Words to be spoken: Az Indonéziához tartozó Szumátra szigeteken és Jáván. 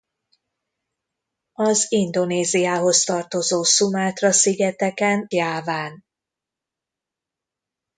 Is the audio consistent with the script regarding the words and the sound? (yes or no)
no